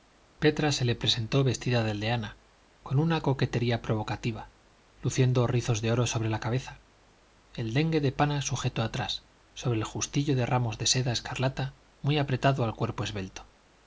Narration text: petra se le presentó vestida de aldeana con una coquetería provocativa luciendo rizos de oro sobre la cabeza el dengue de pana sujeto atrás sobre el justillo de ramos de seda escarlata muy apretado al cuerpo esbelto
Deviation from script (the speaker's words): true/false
false